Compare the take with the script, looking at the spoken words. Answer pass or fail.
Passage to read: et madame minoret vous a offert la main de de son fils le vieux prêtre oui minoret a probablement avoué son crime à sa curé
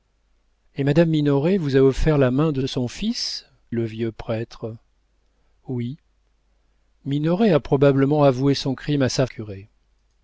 pass